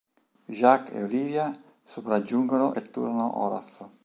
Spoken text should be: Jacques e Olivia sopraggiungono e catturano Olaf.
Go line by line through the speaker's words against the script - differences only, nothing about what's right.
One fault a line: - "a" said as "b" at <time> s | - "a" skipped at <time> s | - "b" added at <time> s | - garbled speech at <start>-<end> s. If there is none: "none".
- "e" skipped at 2.8 s